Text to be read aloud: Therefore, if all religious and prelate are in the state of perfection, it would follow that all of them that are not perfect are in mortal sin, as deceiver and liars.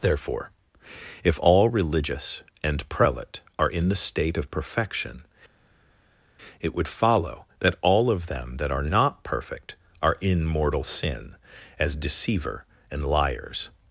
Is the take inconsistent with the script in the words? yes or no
no